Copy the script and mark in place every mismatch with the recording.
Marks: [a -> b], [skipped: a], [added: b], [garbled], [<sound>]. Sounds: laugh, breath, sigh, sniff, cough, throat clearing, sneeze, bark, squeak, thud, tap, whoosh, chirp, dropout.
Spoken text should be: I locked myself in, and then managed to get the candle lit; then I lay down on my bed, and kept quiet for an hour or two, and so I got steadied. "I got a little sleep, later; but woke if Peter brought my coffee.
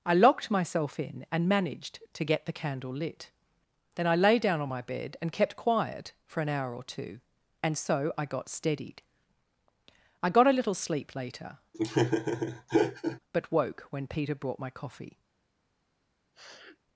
I locked myself in, and [skipped: then] managed to get the candle lit; then I lay down on my bed, and kept quiet for an hour or two, and so I got steadied. "I got a little sleep, later; [laugh] but woke [if -> when] Peter brought my coffee. [sniff]